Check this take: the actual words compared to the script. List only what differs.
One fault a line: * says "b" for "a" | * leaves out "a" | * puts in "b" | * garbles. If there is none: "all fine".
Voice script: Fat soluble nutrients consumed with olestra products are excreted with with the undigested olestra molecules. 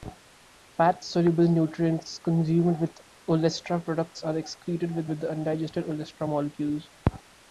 all fine